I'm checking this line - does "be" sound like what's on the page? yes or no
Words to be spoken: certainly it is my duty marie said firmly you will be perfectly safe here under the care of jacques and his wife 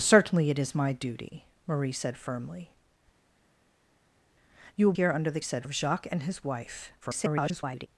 no